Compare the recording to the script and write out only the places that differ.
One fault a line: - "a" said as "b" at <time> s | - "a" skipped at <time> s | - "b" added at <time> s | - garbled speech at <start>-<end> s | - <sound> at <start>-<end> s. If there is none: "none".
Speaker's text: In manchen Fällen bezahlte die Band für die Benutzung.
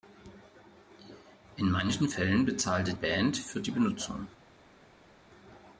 - "die" skipped at 2.9 s